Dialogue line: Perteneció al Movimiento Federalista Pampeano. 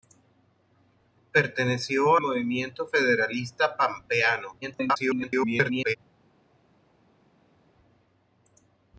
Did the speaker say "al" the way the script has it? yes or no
no